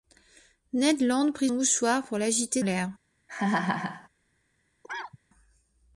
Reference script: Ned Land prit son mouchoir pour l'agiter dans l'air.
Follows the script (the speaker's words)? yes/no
no